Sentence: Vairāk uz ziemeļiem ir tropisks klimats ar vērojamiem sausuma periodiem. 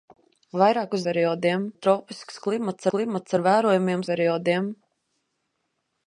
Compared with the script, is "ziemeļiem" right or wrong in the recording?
wrong